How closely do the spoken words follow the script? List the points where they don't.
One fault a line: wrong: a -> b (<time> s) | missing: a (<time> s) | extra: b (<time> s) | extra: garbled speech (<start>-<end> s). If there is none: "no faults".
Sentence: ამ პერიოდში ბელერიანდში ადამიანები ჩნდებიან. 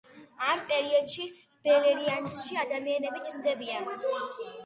no faults